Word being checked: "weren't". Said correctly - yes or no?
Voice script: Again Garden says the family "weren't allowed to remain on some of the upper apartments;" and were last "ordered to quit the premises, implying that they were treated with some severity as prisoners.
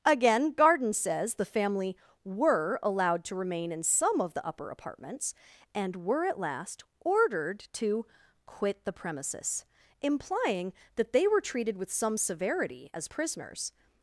no